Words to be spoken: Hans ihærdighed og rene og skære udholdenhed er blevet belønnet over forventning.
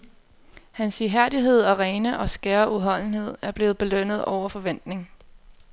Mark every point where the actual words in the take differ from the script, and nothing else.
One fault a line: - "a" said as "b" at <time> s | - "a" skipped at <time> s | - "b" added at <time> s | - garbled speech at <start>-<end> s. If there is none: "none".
none